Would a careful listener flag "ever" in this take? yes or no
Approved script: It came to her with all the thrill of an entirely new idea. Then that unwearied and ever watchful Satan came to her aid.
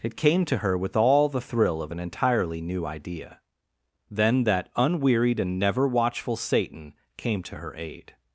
yes